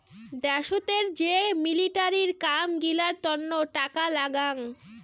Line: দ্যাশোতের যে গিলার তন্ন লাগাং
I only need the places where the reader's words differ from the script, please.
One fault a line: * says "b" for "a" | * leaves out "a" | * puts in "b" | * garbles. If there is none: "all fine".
* puts in "মিলিটারির কাম"
* puts in "টাকা"